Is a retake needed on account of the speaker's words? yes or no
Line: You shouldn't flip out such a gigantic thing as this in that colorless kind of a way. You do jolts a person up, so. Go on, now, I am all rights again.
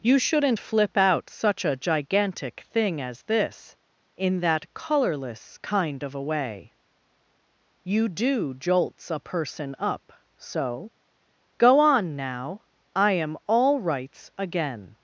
no